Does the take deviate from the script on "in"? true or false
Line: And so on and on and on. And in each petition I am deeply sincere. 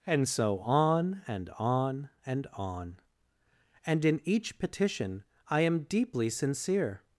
false